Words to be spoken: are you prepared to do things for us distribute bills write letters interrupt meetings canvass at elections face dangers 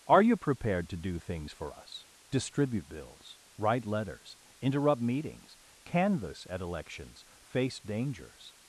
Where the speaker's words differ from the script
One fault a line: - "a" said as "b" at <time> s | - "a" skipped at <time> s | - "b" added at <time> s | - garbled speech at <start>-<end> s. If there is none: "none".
none